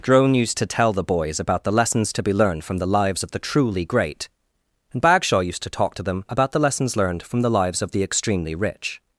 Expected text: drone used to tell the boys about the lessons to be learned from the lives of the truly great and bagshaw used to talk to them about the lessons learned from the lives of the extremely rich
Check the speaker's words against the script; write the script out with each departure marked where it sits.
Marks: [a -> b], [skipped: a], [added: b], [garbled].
drone used to tell the boys about the lessons to be learned from the lives of the truly great and bagshaw used to talk to them about the lessons learned from the lives of the extremely rich